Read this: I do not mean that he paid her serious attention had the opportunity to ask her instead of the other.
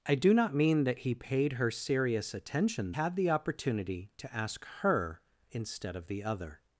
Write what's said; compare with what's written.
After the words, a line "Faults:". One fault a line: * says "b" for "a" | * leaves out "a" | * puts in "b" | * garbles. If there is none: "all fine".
I do not mean that he paid her serious attention had the opportunity to ask her instead of the other.
Faults:
all fine